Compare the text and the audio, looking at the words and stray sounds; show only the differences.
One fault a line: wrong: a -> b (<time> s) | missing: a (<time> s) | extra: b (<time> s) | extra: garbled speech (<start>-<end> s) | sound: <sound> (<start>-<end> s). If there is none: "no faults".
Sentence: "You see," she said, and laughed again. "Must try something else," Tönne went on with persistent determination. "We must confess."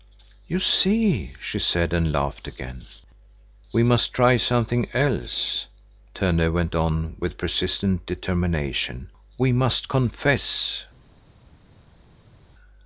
extra: We (3.7 s)